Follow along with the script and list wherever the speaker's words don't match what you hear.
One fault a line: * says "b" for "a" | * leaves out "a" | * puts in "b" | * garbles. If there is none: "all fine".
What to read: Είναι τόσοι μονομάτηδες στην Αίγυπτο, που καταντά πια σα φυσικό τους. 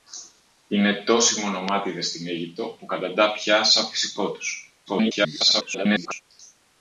* garbles